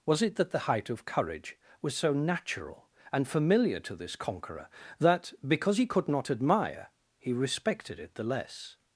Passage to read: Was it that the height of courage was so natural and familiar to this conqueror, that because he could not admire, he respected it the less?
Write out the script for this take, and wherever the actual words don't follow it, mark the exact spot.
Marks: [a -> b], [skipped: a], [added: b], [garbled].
Was it that the height of courage was so natural and familiar to this conqueror, that because he could not admire, he respected it the less?